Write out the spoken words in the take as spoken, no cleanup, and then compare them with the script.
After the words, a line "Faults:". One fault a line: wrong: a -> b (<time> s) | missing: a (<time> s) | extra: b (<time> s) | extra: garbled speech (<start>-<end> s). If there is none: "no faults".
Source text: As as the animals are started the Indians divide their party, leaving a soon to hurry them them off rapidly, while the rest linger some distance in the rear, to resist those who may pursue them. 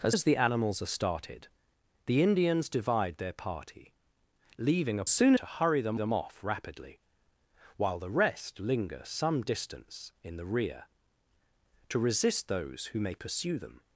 As as the animals are started the Indians divide their party, leaving a soon to hurry them them off rapidly, while the rest linger some distance in the rear, to resist those who may pursue them.
Faults:
no faults